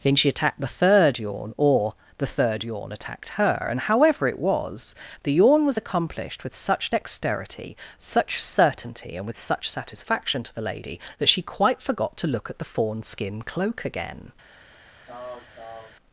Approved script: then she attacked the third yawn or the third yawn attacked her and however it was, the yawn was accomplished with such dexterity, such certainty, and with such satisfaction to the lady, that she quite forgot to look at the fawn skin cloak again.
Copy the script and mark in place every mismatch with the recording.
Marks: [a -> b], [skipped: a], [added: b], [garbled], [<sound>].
then she attacked the third yawn or the third yawn attacked her and however it was, the yawn was accomplished with such dexterity, such certainty, and with such satisfaction to the lady, that she quite forgot to look at the fawn skin cloak again. [throat clearing]